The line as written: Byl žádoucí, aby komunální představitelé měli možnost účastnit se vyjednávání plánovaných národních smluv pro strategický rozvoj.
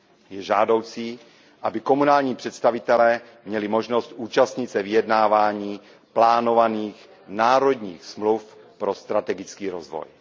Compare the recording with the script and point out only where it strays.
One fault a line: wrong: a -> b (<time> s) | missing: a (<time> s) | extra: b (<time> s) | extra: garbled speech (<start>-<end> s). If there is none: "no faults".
wrong: Byl -> Je (0.3 s)